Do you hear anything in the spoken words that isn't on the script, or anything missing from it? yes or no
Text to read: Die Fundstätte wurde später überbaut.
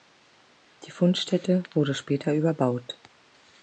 no